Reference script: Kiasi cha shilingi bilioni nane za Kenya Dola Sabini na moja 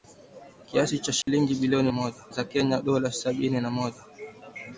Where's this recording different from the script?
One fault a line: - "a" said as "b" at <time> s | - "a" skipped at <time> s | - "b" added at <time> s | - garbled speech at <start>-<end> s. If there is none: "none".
- "nane" said as "moja" at 1.9 s